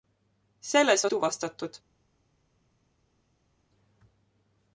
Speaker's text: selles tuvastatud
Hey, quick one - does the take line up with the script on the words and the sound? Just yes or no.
yes